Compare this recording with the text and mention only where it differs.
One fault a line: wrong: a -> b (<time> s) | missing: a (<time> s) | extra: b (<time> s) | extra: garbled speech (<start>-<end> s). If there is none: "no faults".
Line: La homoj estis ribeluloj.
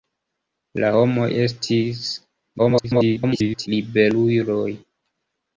extra: garbled speech (2.6-3.7 s)